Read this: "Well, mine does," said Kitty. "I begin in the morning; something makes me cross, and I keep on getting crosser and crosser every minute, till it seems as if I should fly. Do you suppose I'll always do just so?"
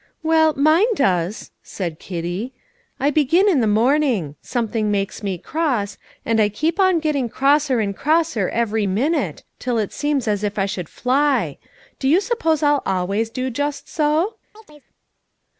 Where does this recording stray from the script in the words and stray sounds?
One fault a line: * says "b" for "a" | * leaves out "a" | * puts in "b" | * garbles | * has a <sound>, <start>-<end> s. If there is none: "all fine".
* has a chirp, 14.5-14.9 s